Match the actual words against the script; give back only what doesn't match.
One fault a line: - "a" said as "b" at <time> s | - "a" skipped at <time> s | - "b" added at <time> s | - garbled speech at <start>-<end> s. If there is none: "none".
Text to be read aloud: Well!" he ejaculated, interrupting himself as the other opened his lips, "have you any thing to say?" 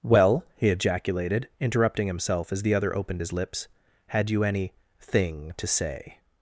- "have" said as "had" at 4.1 s